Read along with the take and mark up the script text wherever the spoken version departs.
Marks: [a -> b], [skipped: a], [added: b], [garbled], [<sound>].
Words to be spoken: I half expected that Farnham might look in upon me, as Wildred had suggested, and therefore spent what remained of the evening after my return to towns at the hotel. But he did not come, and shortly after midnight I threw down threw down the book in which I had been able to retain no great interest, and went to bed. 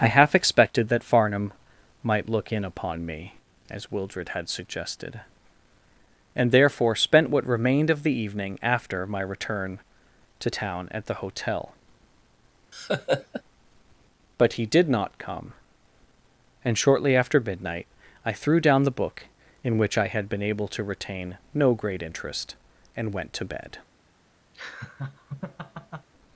I half expected that Farnham might look in upon me, as Wildred had suggested, and therefore spent what remained of the evening after my return to [towns -> town] at the hotel. [laugh] But he did not come, and shortly after midnight I threw down [skipped: threw down] the book in which I had been able to retain no great interest, and went to bed. [laugh]